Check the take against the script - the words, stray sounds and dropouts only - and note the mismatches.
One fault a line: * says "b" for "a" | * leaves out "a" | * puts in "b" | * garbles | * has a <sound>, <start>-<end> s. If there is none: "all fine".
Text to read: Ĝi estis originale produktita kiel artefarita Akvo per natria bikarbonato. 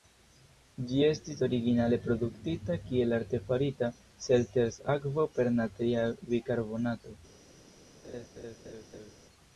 * puts in "Selters"
* has a laugh, 8.0-9.1 s